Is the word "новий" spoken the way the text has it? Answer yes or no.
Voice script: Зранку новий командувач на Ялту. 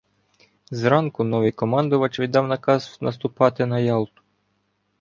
yes